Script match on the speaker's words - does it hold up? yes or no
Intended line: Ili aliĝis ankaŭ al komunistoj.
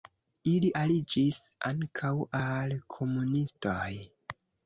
yes